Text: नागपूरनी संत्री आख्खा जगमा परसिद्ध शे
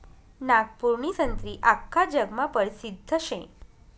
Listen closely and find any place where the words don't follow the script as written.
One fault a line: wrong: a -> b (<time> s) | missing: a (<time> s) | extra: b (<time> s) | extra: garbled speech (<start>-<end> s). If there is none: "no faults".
no faults